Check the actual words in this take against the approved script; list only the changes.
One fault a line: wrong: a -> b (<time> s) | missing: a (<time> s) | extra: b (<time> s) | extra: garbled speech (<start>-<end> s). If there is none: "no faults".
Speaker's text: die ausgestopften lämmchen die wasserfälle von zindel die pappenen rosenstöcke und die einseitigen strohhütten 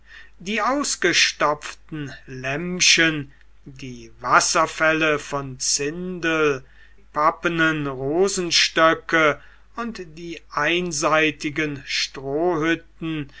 missing: die (6.7 s)